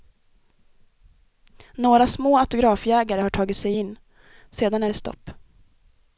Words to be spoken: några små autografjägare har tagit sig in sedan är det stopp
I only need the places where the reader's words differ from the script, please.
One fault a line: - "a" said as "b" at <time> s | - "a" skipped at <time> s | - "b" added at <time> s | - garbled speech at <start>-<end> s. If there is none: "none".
none